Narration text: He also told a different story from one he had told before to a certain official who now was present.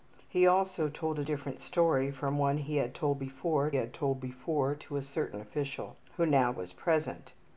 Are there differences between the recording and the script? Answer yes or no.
yes